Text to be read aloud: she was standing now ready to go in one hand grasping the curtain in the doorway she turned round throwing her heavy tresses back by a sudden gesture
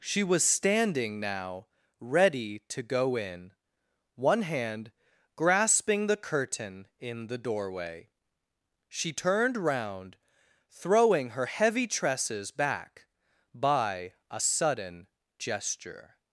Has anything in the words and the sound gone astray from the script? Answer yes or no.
no